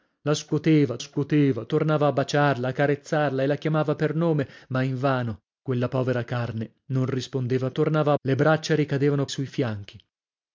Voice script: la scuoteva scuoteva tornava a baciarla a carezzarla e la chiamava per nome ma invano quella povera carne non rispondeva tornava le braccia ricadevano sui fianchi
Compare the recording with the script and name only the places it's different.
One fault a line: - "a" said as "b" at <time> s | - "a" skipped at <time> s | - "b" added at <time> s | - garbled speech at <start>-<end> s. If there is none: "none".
none